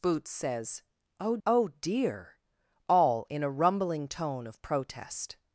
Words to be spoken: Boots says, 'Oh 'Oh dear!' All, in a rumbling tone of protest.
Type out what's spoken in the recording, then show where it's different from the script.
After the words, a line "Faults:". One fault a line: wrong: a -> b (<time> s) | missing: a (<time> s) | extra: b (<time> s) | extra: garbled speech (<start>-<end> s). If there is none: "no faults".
Boots says, 'Oh 'Oh dear!' All, in a rumbling tone of protest.
Faults:
no faults